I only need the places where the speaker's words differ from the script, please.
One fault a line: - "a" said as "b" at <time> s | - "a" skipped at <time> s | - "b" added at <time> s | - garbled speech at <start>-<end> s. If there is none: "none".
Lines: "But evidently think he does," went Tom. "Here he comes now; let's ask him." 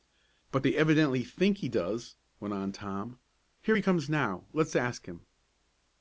- "they" added at 0.6 s
- "on" added at 2.5 s